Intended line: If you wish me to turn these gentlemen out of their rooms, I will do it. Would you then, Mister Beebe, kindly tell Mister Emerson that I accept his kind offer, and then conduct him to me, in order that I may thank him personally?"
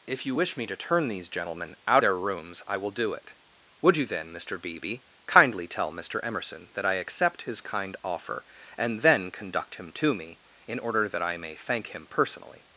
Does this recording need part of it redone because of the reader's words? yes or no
yes